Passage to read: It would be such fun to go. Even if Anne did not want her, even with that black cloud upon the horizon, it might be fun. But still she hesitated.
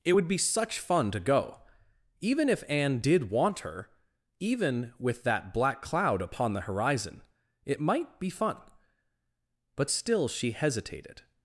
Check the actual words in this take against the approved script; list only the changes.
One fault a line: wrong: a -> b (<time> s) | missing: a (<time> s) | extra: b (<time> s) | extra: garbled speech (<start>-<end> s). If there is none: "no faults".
missing: not (3.3 s)